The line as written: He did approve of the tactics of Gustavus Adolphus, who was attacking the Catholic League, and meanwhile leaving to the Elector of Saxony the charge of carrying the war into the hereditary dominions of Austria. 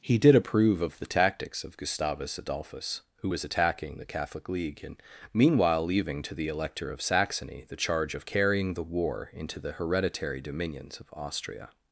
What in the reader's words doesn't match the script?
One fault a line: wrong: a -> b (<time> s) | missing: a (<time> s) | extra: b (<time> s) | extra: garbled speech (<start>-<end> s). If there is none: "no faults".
no faults